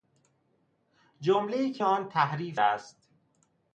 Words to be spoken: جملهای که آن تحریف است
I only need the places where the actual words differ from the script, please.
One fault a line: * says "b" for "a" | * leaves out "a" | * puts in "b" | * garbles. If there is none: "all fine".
all fine